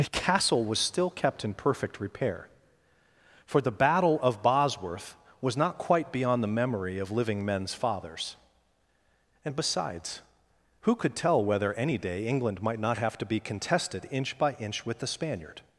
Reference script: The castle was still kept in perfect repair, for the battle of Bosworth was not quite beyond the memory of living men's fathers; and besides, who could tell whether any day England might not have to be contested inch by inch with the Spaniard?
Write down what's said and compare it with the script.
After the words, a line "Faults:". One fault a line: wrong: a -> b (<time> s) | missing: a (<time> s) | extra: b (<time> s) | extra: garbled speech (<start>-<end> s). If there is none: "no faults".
The castle was still kept in perfect repair, for the battle of Bosworth was not quite beyond the memory of living men's fathers; and besides, who could tell whether any day England might not have to be contested inch by inch with the Spaniard?
Faults:
no faults